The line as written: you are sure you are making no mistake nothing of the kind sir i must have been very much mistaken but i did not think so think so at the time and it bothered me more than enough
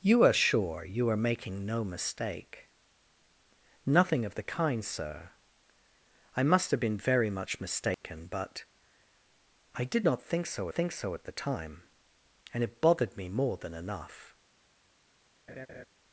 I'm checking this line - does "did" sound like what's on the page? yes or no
yes